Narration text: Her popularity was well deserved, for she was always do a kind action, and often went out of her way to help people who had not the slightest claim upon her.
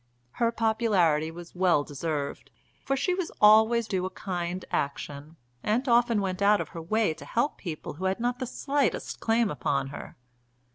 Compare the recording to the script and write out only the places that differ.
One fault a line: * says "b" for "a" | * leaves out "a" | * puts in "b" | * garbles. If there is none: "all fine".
all fine